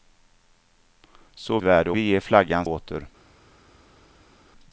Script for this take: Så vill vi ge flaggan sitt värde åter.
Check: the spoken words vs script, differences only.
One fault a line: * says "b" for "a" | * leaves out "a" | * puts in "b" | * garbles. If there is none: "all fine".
* says "värde" for "vill"
* leaves out "sitt värde"